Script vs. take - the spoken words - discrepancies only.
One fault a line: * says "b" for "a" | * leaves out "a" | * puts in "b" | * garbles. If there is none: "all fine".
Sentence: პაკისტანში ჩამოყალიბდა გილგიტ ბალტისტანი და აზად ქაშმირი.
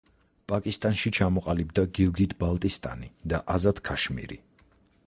all fine